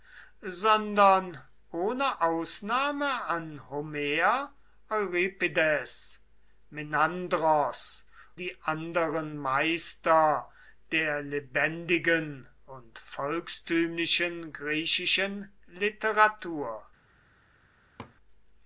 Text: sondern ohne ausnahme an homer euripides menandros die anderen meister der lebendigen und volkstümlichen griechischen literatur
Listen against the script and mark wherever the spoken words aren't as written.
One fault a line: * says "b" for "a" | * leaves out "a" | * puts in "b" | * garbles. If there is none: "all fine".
all fine